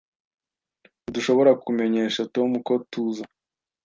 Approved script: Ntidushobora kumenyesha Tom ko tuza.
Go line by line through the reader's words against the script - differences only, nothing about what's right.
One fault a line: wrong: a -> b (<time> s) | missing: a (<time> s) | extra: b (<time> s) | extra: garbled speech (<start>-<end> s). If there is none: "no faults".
no faults